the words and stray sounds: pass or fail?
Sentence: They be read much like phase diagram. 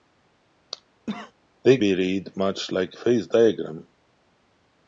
fail